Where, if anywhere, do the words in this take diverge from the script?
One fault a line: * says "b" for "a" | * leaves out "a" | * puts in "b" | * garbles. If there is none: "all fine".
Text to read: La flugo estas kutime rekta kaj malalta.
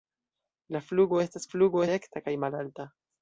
* says "flugo" for "kutime"